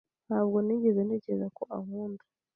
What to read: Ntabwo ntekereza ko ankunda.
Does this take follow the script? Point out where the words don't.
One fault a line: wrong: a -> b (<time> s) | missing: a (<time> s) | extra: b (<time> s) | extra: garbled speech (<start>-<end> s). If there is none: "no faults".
extra: nigeze (0.7 s)